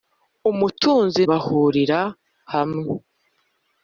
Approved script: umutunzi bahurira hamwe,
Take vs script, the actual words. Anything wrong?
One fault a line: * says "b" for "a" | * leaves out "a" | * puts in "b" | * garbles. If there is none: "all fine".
all fine